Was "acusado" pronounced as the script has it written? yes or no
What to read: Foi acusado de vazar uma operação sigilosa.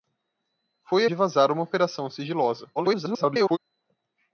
no